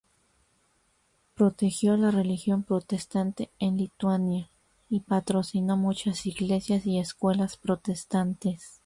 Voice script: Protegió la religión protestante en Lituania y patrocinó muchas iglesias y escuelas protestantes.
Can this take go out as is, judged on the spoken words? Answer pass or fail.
pass